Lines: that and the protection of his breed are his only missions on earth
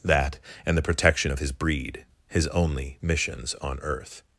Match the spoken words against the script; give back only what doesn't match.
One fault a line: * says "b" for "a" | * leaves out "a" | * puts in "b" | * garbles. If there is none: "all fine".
* leaves out "are"